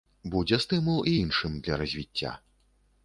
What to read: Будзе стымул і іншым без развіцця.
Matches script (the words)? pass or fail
fail